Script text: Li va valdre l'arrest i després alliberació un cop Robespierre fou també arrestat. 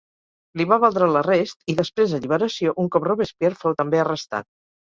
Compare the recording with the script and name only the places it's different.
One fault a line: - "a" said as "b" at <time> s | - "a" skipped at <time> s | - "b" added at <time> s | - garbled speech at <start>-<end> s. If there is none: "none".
none